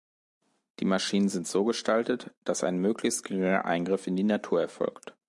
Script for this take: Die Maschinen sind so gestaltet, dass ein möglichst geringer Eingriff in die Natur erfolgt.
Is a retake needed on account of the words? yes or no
no